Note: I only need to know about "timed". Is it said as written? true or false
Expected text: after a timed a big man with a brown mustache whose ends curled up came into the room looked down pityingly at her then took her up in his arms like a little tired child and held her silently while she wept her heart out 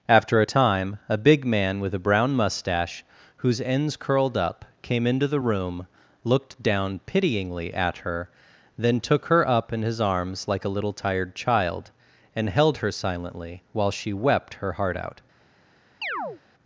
false